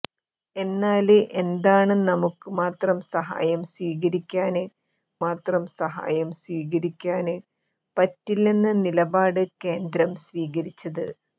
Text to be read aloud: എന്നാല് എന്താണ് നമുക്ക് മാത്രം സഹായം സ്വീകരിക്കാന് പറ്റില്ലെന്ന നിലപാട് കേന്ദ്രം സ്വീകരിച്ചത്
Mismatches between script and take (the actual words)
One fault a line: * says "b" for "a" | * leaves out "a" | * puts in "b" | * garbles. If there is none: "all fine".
* puts in "മാത്രം സഹായം സ്വീകരിക്കാന്"